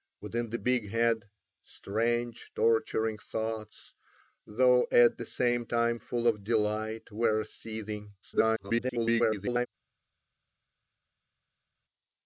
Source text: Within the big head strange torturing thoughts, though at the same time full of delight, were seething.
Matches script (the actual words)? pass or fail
fail